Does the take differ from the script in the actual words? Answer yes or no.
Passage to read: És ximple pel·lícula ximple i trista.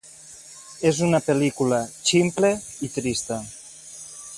yes